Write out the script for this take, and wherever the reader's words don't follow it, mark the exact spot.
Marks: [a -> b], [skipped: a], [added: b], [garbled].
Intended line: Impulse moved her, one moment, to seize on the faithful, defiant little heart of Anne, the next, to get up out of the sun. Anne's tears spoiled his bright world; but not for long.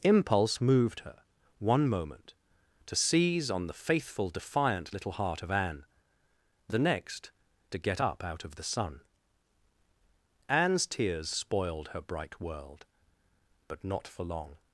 Impulse moved her, one moment, to seize on the faithful, defiant little heart of Anne, the next, to get up out of the sun. Anne's tears spoiled [his -> her] bright world; but not for long.